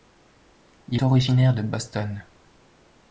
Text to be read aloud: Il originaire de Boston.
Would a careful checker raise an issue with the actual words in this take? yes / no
no